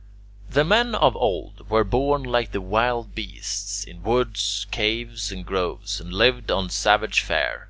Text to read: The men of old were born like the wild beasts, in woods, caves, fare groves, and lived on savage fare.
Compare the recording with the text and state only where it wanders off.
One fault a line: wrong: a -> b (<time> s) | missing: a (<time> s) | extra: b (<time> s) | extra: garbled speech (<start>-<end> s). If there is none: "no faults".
wrong: fare -> and (5.3 s)